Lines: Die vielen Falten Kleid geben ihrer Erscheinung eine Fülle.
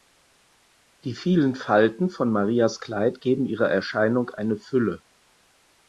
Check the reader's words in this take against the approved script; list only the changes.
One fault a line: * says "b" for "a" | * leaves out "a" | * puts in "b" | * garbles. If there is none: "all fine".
* puts in "von Marias"